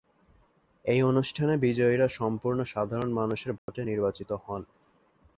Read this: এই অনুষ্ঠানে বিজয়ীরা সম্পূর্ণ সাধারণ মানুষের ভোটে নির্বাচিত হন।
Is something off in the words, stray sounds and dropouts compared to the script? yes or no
yes